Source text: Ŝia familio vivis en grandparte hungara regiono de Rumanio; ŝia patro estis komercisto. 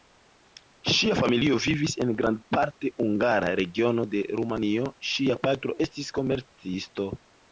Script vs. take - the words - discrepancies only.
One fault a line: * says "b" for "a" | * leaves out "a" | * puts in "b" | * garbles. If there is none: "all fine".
all fine